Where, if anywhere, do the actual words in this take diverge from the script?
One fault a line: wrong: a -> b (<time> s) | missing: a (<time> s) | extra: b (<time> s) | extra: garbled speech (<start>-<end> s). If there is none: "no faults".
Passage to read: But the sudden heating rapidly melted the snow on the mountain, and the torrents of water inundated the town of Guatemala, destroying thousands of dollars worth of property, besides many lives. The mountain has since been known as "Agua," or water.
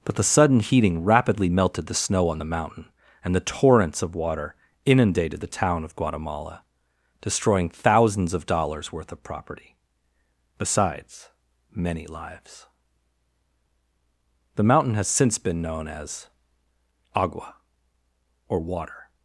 no faults